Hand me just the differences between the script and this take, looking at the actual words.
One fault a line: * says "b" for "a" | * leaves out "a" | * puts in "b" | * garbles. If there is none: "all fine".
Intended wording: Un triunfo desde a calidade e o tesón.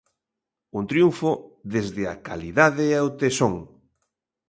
all fine